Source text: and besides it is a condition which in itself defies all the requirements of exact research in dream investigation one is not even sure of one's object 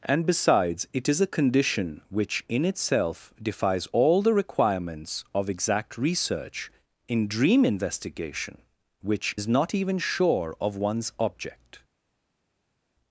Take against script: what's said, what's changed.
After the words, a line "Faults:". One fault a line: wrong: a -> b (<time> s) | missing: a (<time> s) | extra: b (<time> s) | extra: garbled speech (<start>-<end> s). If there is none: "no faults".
and besides it is a condition which in itself defies all the requirements of exact research in dream investigation which is not even sure of one's object
Faults:
wrong: one -> which (9.0 s)